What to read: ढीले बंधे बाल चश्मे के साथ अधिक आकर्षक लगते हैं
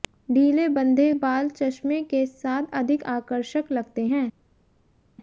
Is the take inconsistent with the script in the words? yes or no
no